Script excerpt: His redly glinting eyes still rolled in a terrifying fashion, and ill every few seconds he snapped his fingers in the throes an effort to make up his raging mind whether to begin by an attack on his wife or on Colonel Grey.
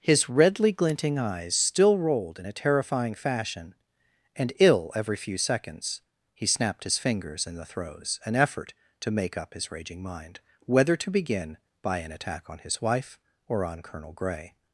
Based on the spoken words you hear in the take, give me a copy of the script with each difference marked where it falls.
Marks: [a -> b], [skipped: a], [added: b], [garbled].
His redly glinting eyes still rolled in a terrifying fashion, and ill every few seconds he snapped his fingers in the throes an effort to make up his raging mind whether to begin by an attack on his wife or on Colonel Grey.